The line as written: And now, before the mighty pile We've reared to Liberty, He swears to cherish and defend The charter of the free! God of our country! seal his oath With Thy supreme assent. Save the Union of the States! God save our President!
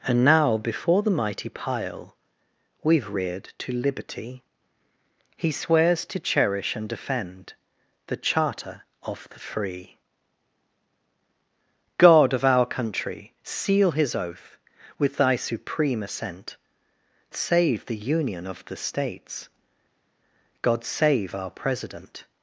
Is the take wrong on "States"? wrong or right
right